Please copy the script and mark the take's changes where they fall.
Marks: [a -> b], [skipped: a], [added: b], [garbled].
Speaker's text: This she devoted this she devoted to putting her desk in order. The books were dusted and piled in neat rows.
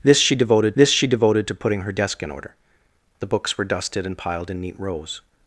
This she devoted this she devoted to putting her desk in order. The books were dusted and piled in neat rows.